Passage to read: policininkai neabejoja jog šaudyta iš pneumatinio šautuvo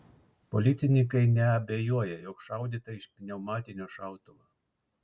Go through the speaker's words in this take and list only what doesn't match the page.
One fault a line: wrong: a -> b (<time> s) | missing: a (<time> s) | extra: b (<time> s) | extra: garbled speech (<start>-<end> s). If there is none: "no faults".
no faults